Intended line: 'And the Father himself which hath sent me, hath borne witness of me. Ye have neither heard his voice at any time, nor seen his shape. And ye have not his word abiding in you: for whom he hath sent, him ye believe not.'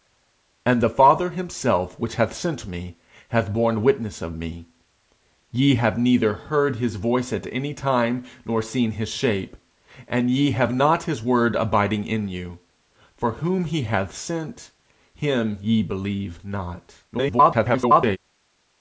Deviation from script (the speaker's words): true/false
true